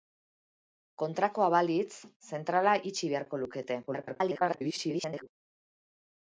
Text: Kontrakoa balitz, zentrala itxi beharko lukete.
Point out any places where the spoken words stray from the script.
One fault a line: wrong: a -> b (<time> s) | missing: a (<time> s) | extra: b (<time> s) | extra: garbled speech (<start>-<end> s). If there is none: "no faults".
extra: garbled speech (3.9-5.3 s)